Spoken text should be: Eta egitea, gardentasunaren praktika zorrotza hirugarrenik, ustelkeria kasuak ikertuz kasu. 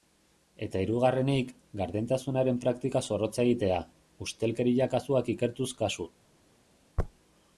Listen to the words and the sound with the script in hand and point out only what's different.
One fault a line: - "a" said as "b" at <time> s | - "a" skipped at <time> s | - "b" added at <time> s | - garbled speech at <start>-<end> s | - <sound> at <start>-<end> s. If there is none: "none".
- "egitea" said as "hirugarrenik" at 0.8 s
- "hirugarrenik" said as "egitea" at 3.5 s